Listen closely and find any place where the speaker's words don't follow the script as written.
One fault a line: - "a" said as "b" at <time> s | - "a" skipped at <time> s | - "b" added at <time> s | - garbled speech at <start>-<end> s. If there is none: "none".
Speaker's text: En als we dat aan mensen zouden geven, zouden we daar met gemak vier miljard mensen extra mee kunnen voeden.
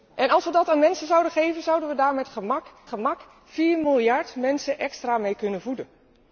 - "gemak" added at 2.8 s